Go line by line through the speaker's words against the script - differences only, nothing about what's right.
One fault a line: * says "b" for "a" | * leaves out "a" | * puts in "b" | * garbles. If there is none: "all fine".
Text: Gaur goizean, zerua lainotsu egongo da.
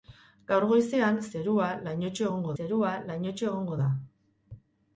* puts in "zerua lainotsu egongo"